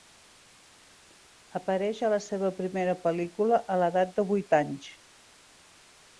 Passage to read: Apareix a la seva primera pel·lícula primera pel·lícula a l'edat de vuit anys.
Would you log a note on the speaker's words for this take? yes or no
yes